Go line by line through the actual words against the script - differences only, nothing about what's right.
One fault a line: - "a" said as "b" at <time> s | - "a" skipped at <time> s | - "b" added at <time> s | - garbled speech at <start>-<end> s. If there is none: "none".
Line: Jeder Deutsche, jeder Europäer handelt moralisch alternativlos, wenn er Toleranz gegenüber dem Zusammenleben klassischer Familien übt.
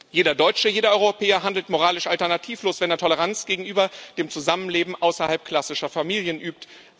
- "außerhalb" added at 4.9 s